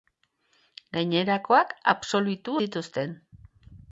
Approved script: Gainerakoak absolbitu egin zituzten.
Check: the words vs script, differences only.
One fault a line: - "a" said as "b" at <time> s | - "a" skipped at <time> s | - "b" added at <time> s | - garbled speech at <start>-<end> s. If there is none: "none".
- "egin" skipped at 2.6 s